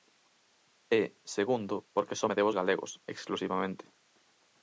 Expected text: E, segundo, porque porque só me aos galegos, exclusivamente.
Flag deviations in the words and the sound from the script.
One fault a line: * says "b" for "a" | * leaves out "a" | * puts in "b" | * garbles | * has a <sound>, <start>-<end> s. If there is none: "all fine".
* leaves out "porque"
* puts in "debo"